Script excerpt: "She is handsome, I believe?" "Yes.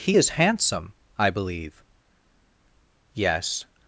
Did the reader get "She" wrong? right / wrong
wrong